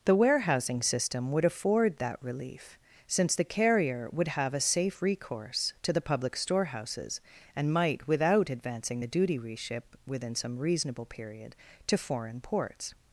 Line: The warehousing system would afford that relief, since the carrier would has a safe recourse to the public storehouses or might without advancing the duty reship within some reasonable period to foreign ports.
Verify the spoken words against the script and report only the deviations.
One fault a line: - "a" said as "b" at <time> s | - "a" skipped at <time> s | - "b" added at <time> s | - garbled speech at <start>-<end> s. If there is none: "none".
- "has" said as "have" at 4.3 s
- "or" said as "and" at 7.5 s